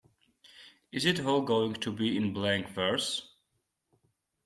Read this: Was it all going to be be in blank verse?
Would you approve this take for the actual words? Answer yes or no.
no